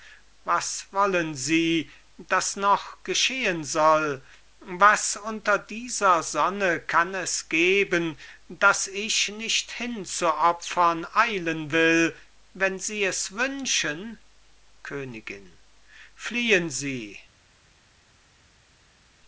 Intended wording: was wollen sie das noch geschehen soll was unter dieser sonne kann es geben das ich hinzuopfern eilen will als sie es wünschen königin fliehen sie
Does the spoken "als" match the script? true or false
false